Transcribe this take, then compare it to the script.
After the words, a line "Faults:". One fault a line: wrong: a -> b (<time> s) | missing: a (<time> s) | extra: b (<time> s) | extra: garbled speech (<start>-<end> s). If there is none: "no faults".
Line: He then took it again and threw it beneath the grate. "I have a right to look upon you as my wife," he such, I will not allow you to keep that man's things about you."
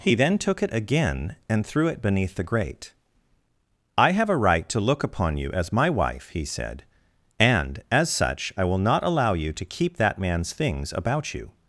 He then took it again and threw it beneath the grate. "I have a right to look upon you as my wife," he said, "and, as such, I will not allow you to keep that man's things about you."
Faults:
extra: said and as (6.5 s)